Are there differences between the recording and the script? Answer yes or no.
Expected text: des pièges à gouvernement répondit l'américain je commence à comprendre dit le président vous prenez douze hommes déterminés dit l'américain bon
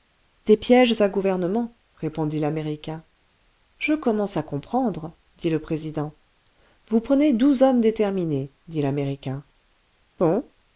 no